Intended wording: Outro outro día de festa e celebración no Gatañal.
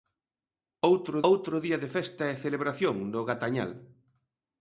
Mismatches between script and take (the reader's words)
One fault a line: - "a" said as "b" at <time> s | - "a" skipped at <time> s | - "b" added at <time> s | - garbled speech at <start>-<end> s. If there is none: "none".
none